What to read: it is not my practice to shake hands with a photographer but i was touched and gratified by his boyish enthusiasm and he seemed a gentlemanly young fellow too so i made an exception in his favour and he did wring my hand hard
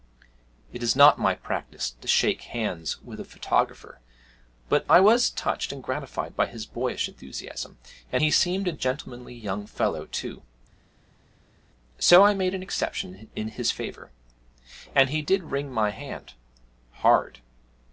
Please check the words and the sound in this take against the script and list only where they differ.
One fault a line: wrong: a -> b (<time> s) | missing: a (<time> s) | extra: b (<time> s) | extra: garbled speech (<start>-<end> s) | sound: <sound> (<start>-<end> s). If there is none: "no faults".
no faults